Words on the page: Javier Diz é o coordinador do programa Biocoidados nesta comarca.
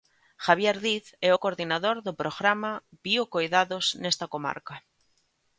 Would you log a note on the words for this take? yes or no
no